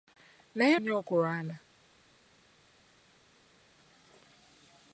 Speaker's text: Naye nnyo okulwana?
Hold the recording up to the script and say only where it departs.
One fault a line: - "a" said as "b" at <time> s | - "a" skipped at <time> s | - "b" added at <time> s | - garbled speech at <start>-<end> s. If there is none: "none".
none